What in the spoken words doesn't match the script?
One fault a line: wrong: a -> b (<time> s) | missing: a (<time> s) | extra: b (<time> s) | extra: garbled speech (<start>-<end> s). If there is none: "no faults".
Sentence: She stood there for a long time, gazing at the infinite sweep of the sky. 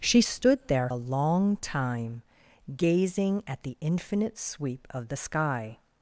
missing: for (0.9 s)